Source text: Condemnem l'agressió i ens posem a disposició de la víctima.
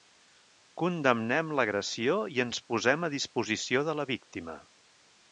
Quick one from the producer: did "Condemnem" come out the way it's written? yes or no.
yes